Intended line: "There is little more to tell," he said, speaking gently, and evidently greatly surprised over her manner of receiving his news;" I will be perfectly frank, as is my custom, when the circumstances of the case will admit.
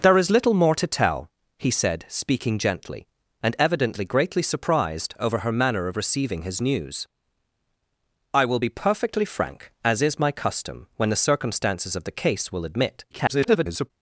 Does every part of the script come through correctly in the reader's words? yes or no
no